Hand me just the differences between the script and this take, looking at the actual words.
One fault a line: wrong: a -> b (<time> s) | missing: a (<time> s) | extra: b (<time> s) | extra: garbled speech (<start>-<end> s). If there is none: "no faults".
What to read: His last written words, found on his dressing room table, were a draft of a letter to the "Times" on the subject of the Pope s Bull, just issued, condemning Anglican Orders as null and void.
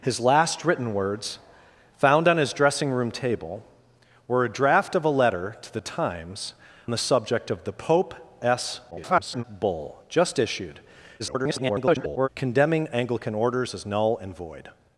missing: on (6.5 s)
extra: garbled speech (8.9-9.4 s)
extra: garbled speech (11.2-12.3 s)